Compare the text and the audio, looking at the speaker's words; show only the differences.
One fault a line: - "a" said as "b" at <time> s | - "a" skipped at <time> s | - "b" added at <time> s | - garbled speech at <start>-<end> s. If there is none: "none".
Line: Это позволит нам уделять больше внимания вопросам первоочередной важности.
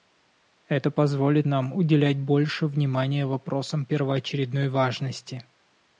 none